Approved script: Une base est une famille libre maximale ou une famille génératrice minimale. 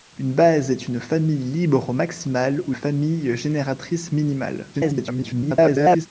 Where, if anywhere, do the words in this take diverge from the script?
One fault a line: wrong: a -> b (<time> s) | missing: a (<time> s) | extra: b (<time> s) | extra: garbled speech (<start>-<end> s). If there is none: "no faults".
missing: une (2.7 s)
extra: garbled speech (4.7-6.1 s)